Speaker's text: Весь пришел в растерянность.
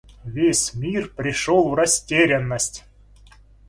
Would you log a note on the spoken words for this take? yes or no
yes